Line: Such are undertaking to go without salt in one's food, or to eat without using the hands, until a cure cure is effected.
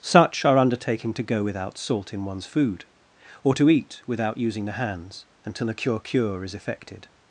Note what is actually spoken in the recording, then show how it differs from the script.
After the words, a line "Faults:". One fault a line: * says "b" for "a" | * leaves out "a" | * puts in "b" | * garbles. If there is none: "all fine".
Such are undertaking to go without salt in one's food, or to eat without using the hands, until a cure cure is effected.
Faults:
all fine